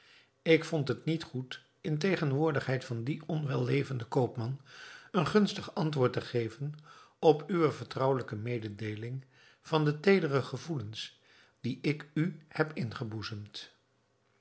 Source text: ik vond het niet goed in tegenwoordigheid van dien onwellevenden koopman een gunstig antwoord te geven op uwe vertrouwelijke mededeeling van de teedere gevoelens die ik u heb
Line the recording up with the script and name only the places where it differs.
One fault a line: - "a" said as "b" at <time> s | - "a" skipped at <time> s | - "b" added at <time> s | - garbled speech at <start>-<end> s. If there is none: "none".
none